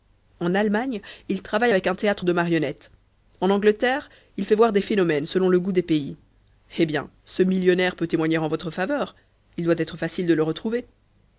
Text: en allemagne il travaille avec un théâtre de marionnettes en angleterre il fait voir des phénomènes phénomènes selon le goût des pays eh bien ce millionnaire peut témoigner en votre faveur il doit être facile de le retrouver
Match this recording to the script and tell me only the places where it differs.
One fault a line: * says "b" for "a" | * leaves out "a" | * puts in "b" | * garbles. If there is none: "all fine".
* leaves out "phénomènes"